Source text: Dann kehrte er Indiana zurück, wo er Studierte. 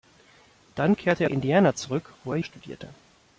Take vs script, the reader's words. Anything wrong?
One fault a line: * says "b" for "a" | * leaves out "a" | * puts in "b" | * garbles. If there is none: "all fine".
all fine